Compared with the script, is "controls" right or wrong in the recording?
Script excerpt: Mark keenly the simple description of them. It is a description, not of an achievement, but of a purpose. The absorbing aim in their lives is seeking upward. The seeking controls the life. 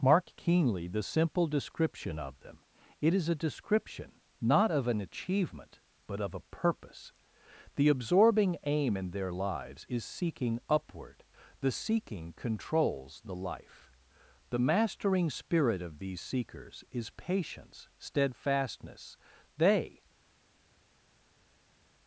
right